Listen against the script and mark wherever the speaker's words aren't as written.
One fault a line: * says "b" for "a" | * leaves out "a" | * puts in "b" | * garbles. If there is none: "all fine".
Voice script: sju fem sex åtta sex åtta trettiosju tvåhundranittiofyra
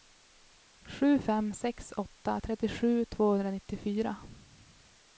* leaves out "sex åtta"